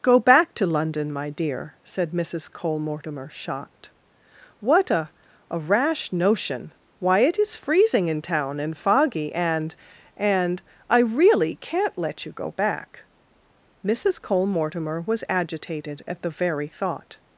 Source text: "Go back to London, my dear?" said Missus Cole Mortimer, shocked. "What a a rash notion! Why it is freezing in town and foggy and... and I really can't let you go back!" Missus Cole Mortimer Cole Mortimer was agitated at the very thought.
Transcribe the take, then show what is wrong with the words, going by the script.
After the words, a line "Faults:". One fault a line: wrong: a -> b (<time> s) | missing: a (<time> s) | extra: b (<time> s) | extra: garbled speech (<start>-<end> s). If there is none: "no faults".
"Go back to London, my dear?" said Missus Cole Mortimer, shocked. "What a a rash notion! Why it is freezing in town and foggy and... and I really can't let you go back!" Missus Cole Mortimer was agitated at the very thought.
Faults:
missing: Cole Mortimer (15.0 s)